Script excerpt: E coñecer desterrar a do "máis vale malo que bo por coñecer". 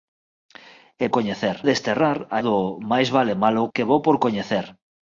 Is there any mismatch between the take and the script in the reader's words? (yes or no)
no